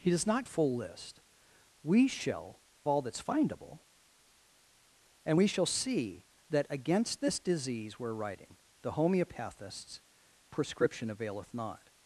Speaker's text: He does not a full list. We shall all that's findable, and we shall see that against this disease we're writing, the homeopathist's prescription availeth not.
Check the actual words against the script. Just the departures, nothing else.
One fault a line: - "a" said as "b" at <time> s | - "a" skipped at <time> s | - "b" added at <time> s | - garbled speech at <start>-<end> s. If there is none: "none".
none